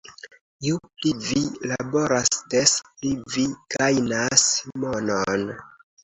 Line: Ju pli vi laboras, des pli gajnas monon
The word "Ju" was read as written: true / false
true